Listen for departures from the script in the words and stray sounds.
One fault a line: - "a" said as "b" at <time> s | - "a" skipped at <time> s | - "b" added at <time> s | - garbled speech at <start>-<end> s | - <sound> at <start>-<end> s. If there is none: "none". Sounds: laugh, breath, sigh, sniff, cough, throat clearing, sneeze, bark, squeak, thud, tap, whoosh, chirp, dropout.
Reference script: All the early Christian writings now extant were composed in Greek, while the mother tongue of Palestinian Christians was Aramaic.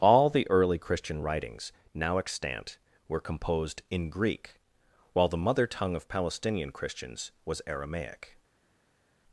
none